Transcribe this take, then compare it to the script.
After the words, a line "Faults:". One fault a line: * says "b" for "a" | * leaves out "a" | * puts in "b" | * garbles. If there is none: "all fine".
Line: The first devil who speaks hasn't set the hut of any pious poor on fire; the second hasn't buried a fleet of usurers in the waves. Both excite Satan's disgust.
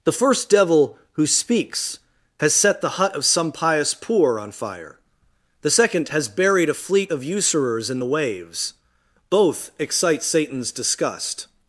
The first devil who speaks has set the hut of some pious poor on fire; the second has buried a fleet of usurers in the waves. Both excite Satan's disgust.
Faults:
* says "has" for "hasn't"
* says "some" for "any"
* says "has" for "hasn't"